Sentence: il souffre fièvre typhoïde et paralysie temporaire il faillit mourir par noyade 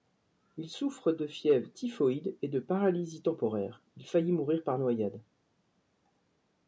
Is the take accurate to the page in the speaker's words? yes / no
no